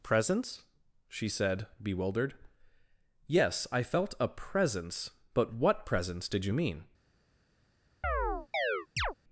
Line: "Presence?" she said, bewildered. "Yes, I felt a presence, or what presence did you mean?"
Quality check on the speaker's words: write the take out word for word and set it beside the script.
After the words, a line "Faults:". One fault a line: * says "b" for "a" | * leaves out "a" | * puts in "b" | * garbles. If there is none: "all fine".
"Presence?" she said, bewildered. "Yes, I felt a presence, but what presence did you mean?"
Faults:
* says "but" for "or"